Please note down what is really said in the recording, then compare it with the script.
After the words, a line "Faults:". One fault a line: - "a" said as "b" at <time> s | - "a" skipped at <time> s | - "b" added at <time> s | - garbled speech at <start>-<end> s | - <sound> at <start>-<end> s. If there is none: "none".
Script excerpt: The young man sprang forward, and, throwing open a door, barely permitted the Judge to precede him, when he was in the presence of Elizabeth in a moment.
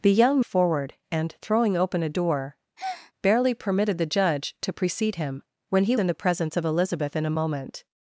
The young forward, and, throwing open a door, barely permitted the Judge to precede him, when he in the presence of Elizabeth in a moment.
Faults:
- "man sprang" skipped at 0.4 s
- breath at 2.8-3.1 s
- "was" skipped at 6.0 s